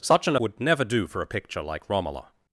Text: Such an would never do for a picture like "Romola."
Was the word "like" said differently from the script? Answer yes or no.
no